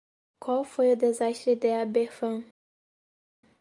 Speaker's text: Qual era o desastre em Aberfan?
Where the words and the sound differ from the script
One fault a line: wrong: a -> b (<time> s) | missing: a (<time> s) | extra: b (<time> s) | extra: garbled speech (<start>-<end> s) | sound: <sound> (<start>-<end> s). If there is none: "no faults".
wrong: era -> foi (0.6 s)
wrong: em -> de (1.6 s)